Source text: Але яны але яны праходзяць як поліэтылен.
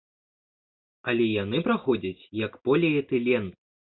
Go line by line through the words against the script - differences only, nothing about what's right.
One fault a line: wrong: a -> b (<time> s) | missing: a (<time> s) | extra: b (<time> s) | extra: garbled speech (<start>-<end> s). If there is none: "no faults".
missing: але яны (1.6 s)